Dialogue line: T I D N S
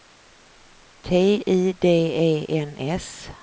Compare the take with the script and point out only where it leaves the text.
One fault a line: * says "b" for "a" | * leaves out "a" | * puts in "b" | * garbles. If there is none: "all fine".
* puts in "E"